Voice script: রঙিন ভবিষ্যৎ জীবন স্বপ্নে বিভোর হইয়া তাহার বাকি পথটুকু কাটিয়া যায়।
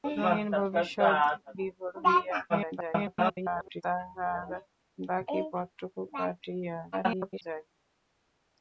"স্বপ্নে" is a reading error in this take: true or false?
true